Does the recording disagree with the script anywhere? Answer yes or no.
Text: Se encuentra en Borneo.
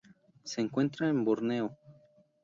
no